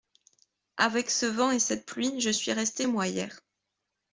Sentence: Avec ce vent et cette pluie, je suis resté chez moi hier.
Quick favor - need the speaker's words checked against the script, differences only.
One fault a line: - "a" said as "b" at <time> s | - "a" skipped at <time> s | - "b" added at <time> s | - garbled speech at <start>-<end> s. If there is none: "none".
- "chez" skipped at 2.9 s